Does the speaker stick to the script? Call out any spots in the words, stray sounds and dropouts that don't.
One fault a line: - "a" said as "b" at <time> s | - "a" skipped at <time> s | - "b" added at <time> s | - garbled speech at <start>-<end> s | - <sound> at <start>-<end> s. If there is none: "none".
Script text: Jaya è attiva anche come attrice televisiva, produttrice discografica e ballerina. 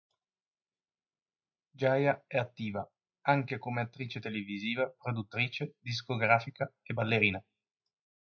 none